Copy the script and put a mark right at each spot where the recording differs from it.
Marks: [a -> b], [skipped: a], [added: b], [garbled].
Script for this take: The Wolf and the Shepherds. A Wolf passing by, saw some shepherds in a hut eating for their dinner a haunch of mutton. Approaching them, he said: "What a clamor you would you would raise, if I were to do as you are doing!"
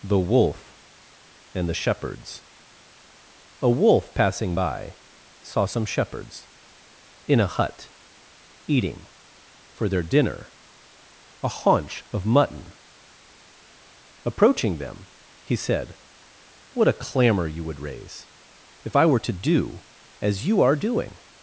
The Wolf and the Shepherds. A Wolf passing by, saw some shepherds in a hut eating for their dinner a haunch of mutton. Approaching them, he said: "What a clamor you would [skipped: you would] raise, if I were to do as you are doing!"